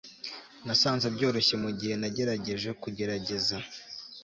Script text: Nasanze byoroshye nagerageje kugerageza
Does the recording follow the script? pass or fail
fail